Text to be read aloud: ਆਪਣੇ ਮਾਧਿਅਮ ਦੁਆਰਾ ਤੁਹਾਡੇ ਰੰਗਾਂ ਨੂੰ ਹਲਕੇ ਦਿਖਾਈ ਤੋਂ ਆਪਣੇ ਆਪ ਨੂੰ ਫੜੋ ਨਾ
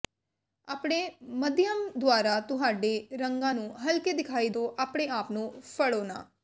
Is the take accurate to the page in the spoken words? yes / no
yes